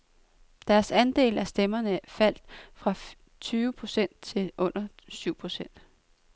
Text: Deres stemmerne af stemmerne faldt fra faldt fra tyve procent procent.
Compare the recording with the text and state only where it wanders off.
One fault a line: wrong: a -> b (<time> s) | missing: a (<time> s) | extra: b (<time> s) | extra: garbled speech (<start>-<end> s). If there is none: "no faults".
wrong: stemmerne -> andel (0.9 s)
wrong: faldt fra tyve procent -> tyve procent til under syv (3.4 s)